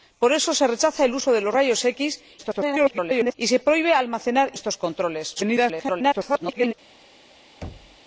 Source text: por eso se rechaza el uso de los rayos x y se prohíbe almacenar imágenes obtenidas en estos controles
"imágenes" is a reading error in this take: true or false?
true